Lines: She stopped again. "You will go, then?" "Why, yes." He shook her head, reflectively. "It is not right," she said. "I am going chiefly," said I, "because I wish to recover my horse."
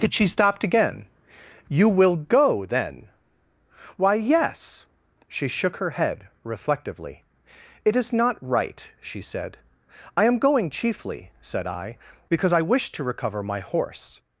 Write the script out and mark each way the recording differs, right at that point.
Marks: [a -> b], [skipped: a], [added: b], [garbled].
She stopped again. "You will go, then?" "Why, yes." [He -> She] shook her head, reflectively. "It is not right," she said. "I am going chiefly," said I, "because I wish to recover my horse."